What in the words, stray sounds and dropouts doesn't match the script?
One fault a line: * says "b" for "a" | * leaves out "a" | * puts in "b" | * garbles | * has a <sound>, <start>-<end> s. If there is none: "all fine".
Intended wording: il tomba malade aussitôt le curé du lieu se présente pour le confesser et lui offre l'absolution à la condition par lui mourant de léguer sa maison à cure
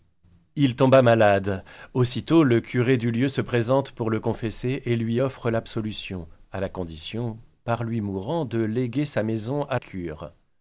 all fine